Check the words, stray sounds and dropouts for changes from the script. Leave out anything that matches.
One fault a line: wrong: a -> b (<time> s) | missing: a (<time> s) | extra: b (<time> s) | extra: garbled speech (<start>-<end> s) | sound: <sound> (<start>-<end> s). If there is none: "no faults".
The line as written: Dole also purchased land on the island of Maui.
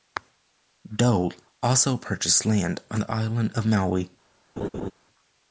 sound: laugh (4.6-4.9 s)